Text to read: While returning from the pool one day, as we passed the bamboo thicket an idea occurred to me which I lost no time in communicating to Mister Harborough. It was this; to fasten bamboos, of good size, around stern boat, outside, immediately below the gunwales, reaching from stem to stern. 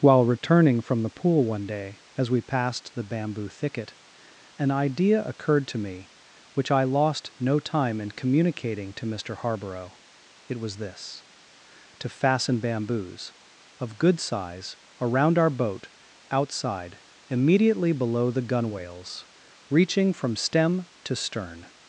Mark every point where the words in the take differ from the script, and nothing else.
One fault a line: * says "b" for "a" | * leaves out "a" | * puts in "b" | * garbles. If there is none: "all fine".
* says "our" for "stern"